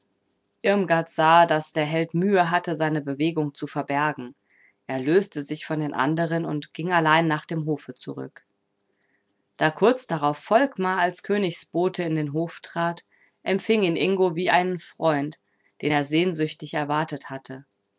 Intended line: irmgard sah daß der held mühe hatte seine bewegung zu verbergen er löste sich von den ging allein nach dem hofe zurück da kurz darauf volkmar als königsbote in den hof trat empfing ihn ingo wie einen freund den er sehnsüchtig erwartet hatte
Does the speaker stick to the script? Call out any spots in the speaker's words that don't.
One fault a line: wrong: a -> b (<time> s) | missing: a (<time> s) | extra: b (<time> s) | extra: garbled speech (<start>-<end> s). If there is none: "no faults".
extra: anderen und (5.9 s)